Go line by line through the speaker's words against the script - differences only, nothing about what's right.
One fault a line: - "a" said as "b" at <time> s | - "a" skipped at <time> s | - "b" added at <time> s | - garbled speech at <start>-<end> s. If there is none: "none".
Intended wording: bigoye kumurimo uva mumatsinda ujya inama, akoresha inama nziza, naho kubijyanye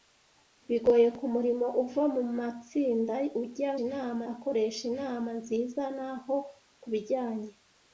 none